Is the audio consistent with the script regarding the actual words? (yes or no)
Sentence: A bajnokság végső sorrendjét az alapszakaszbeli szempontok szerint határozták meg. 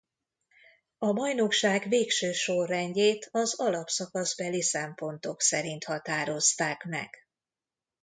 yes